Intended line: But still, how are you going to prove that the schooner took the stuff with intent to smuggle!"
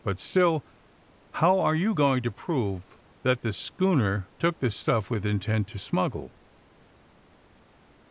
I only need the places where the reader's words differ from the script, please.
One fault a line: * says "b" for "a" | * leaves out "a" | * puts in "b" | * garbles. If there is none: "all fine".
all fine